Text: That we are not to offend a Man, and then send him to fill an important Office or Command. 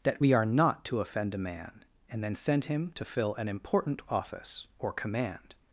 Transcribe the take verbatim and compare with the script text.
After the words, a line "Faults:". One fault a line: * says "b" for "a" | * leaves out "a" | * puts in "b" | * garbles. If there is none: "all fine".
That we are not to offend a Man, and then send him to fill an important Office or Command.
Faults:
all fine